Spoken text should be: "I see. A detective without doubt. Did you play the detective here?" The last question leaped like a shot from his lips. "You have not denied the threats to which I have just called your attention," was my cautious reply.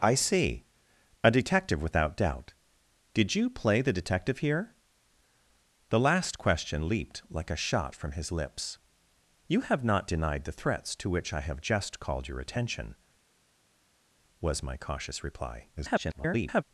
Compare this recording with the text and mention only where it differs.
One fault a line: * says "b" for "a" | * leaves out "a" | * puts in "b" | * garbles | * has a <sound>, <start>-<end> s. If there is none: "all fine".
* garbles